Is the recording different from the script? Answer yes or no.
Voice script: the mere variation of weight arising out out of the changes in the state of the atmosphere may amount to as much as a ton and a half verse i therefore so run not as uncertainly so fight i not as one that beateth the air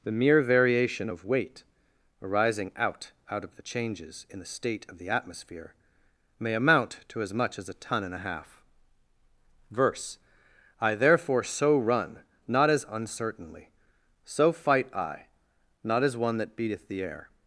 no